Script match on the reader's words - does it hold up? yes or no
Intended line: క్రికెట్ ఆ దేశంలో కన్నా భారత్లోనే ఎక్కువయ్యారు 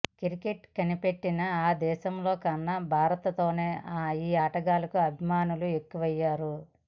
no